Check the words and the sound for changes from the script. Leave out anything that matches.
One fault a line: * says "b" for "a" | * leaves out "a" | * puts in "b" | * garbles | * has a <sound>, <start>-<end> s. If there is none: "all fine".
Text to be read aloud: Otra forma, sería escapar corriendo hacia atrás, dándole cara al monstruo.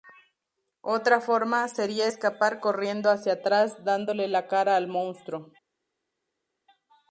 * puts in "la"